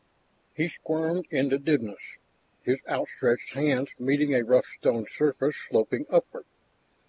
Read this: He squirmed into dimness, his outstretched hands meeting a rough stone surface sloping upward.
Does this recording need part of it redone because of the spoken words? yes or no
no